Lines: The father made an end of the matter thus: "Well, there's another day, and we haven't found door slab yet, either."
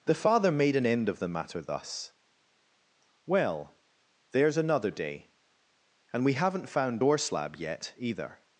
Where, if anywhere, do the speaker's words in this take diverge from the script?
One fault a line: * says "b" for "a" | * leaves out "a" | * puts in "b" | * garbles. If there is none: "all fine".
all fine